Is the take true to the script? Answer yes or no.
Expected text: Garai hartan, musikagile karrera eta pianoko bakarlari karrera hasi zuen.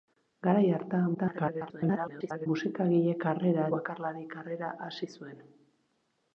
no